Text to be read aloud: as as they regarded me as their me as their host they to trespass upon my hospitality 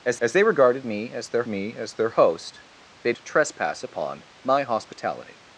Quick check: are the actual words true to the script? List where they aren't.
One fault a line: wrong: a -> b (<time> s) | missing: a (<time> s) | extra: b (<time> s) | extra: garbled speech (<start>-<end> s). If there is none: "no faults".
no faults